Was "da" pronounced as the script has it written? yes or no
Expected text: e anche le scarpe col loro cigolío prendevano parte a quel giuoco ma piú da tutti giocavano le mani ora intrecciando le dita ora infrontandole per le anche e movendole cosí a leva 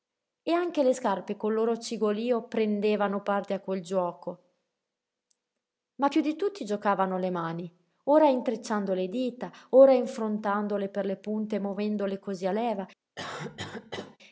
no